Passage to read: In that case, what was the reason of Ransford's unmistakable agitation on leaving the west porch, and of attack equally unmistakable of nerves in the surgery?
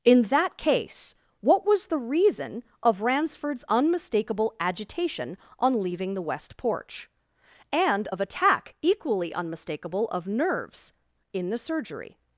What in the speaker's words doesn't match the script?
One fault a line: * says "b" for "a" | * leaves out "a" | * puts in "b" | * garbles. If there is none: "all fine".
all fine